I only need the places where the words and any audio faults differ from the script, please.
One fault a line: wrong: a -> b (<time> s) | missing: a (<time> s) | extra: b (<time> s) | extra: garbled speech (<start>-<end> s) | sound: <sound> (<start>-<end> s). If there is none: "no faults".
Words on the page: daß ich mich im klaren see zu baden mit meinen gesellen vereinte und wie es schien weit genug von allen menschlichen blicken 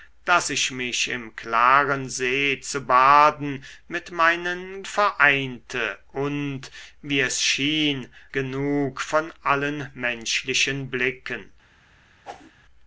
missing: gesellen (4.8 s)
missing: weit (8.1 s)
sound: whoosh (12.2-12.5 s)